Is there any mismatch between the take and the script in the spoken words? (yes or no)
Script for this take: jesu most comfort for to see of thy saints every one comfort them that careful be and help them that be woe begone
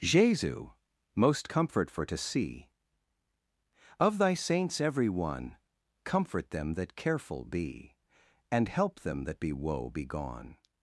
no